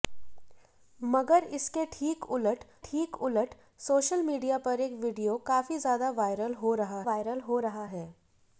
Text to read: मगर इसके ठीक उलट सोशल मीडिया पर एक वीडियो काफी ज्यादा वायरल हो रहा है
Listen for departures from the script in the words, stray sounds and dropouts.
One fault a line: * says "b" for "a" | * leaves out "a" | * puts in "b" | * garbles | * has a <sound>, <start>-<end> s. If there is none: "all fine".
* puts in "ठीक उलट"
* puts in "वायरल हो रहा"